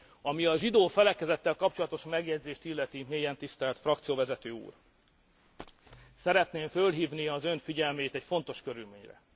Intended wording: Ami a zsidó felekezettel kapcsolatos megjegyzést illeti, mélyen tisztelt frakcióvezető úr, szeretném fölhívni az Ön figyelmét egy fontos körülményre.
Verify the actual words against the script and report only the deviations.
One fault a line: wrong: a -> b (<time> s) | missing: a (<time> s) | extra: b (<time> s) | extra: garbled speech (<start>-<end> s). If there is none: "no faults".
no faults